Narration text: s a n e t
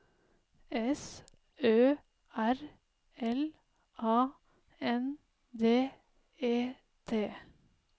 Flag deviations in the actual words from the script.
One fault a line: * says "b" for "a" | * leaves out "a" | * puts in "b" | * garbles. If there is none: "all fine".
* puts in "ø r l"
* puts in "d"